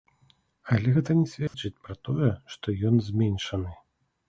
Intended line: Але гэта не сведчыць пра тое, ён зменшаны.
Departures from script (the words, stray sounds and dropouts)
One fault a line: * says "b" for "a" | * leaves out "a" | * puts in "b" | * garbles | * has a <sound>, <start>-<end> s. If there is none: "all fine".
* has a dropout, 1.5-1.5 s
* puts in "што"